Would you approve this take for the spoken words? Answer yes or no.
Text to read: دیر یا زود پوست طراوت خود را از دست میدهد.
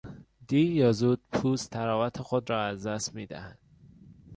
yes